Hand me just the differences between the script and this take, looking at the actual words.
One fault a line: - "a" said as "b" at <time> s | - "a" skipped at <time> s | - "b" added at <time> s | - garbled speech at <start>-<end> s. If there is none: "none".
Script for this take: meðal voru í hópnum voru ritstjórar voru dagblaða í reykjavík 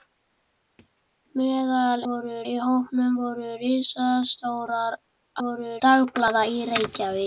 none